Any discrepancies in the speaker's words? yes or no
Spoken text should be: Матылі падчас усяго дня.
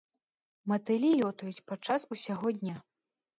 yes